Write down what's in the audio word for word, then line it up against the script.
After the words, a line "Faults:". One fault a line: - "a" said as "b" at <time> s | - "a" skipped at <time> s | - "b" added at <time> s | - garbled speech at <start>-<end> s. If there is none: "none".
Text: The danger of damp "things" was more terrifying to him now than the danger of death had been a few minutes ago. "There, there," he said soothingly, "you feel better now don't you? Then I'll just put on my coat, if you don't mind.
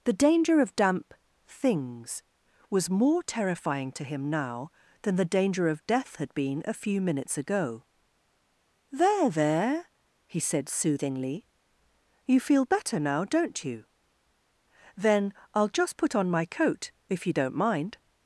The danger of damp "things" was more terrifying to him now than the danger of death had been a few minutes ago. "There, there," he said soothingly, "you feel better now don't you? Then I'll just put on my coat, if you don't mind.
Faults:
none